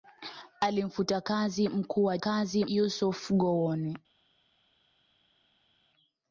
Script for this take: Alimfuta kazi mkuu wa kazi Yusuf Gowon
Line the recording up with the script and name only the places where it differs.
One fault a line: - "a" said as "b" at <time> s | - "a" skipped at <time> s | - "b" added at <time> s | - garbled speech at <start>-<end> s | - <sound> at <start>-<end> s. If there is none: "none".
none